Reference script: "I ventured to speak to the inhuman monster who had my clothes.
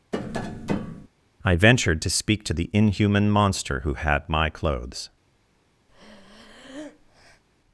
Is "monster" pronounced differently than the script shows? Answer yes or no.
no